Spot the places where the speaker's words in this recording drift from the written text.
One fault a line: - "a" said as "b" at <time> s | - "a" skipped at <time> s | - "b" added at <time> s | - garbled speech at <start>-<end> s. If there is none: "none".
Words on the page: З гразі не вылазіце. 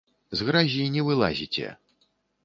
none